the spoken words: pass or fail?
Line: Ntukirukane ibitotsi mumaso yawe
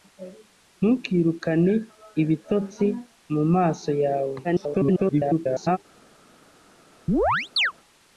fail